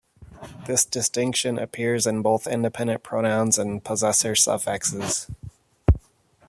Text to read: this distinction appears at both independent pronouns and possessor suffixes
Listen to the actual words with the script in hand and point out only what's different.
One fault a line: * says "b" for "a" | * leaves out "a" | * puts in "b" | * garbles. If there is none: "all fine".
* says "in" for "at"